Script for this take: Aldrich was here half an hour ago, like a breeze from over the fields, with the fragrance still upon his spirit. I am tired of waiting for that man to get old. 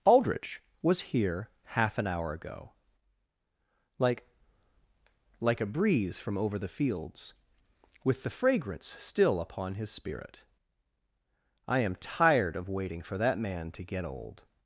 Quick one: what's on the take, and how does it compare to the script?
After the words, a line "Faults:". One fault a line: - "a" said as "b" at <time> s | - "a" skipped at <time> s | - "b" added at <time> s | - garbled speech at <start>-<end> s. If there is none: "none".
Aldrich was here half an hour ago, like like a breeze from over the fields, with the fragrance still upon his spirit. I am tired of waiting for that man to get old.
Faults:
- "like" added at 5.4 s